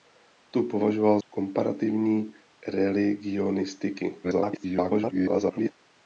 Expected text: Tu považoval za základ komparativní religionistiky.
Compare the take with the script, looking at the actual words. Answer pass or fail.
fail